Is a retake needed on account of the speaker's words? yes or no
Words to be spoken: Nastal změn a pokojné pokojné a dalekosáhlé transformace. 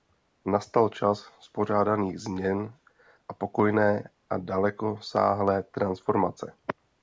yes